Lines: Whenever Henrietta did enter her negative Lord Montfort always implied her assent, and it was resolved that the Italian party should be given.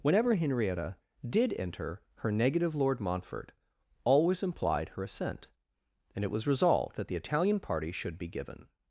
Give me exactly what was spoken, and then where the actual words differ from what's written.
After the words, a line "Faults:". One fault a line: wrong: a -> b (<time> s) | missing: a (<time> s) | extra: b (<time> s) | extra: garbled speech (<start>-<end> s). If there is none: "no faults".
Whenever Henrietta did enter her negative Lord Montfort always implied her assent, and it was resolved that the Italian party should be given.
Faults:
no faults